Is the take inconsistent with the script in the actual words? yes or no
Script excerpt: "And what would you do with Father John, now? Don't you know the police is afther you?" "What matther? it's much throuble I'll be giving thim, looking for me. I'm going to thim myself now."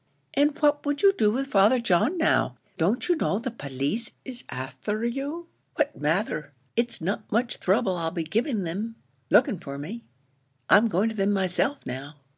yes